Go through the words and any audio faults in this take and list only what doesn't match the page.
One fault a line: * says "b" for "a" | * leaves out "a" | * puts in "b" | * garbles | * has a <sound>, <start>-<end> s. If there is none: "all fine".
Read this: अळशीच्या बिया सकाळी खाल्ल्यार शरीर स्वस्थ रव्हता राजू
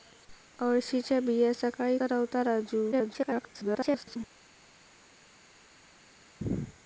* leaves out "खाल्ल्यार शरीर स्वस्थ"
* garbles